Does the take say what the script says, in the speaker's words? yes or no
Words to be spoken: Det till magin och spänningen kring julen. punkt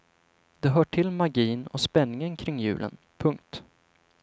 no